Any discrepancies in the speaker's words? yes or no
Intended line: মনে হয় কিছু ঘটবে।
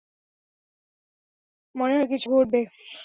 no